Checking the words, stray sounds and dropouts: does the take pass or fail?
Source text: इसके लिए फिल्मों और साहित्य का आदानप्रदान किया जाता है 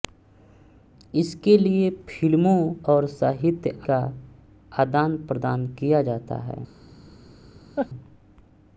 fail